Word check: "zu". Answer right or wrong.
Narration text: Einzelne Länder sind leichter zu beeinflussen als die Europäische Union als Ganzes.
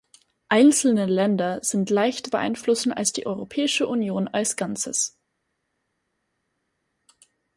wrong